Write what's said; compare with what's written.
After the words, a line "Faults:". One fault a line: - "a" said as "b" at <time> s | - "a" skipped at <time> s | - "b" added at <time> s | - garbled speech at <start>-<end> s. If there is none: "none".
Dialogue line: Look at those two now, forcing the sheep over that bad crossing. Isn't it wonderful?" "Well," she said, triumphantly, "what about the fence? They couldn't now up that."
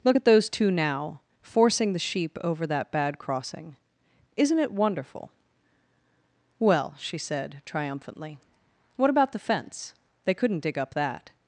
Look at those two now, forcing the sheep over that bad crossing. Isn't it wonderful?" "Well," she said, triumphantly, "what about the fence? They couldn't dig up that."
Faults:
- "now" said as "dig" at 10.6 s